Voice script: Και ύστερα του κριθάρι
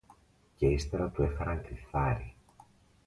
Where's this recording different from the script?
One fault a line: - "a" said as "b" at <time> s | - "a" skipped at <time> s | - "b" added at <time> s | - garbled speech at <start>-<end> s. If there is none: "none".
- "έφεραν" added at 1.2 s